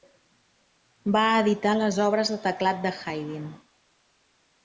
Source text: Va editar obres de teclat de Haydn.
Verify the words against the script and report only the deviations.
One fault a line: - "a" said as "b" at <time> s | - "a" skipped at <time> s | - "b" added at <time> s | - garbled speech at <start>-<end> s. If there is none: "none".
- "les" added at 1.8 s